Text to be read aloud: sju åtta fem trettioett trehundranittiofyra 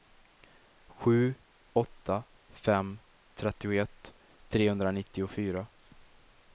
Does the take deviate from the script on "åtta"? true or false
false